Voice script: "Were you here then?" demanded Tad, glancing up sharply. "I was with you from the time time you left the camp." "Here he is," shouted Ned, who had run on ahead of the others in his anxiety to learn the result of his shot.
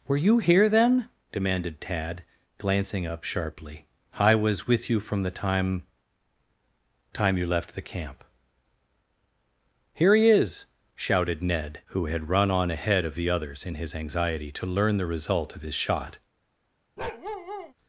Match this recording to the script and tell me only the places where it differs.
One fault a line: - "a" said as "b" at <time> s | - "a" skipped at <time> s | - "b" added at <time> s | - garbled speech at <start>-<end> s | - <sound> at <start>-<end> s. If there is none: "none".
- bark at 17.0-17.7 s